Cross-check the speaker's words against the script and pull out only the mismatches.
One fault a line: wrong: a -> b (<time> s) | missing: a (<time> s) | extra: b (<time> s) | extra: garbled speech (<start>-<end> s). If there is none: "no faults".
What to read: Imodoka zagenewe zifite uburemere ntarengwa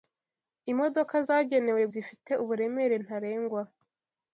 no faults